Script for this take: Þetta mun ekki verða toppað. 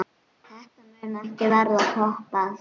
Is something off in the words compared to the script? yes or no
no